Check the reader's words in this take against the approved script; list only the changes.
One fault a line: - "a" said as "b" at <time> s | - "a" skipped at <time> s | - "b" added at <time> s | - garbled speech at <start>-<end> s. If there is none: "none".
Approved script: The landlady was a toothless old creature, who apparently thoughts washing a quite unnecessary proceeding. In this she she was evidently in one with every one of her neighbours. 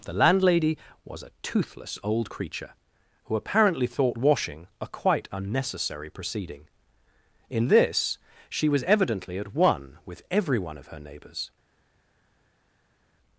- "thoughts" said as "thought" at 3.9 s
- "she" skipped at 8.7 s
- "in" said as "at" at 9.4 s